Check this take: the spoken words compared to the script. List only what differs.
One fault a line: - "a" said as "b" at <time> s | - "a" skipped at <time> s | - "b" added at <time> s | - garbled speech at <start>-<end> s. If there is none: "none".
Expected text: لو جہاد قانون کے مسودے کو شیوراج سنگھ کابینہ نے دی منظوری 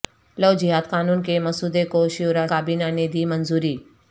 - "سنگھ" skipped at 2.5 s